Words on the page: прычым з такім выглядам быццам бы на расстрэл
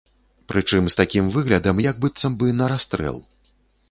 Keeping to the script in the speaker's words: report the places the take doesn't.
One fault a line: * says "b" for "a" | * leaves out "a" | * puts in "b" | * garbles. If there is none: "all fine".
* puts in "як"